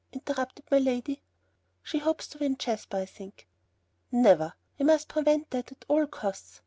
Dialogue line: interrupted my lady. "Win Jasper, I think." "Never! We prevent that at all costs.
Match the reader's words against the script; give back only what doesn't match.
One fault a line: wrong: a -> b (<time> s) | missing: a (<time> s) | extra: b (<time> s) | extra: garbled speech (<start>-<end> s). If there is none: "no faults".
extra: She hopes to (1.8 s)
extra: must (4.9 s)